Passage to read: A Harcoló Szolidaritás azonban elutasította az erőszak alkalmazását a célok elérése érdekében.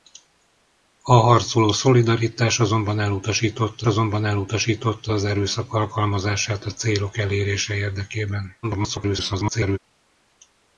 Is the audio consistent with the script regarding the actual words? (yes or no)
no